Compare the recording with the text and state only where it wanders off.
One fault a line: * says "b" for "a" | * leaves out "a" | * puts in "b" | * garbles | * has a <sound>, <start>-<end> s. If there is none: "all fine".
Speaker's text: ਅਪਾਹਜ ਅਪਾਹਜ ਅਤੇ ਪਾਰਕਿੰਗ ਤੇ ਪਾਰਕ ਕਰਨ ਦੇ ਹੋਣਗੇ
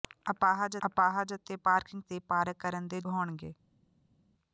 all fine